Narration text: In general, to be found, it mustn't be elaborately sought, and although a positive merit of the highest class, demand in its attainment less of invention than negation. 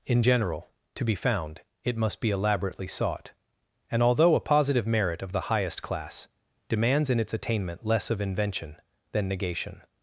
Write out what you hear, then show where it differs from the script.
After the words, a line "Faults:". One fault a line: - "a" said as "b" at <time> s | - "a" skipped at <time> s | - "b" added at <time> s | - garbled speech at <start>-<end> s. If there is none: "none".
In general, to be found, it must be elaborately sought, and although a positive merit of the highest class, demands in its attainment less of invention than negation.
Faults:
- "mustn't" said as "must" at 2.0 s
- "demand" said as "demands" at 6.7 s